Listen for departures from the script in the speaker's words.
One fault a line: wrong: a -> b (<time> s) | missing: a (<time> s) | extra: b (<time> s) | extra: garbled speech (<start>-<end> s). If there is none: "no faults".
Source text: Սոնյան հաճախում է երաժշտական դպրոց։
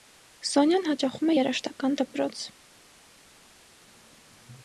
no faults